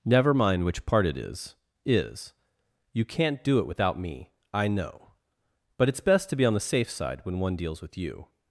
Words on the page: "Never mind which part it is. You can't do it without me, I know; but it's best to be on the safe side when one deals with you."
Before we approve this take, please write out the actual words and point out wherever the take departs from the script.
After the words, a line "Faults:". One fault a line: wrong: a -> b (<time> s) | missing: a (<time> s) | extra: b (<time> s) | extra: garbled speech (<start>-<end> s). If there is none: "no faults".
"Never mind which part it is is. You can't do it without me, I know; but it's best to be on the safe side when one deals with you."
Faults:
extra: is (1.8 s)